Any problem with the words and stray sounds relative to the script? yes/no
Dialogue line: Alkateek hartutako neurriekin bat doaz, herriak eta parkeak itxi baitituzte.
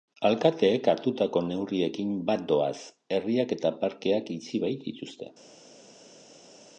no